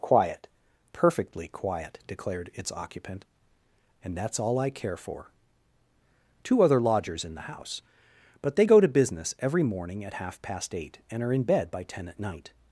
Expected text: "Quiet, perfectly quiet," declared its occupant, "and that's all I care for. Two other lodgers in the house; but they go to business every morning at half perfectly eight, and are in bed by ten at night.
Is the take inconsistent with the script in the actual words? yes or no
yes